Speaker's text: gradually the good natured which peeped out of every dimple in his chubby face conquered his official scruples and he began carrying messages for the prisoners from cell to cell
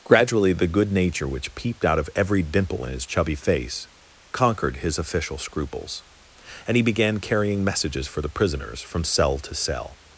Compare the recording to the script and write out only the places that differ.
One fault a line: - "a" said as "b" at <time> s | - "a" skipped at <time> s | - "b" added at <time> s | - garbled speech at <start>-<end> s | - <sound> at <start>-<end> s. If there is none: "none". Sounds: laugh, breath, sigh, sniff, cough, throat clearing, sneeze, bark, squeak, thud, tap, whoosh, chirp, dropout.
- "natured" said as "nature" at 0.9 s